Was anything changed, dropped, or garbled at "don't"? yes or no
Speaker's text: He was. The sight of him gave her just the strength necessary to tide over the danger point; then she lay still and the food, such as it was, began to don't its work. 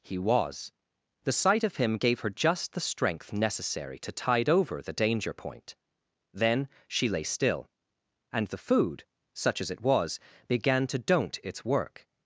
no